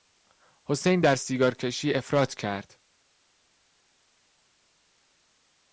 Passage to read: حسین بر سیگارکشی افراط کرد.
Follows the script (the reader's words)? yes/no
no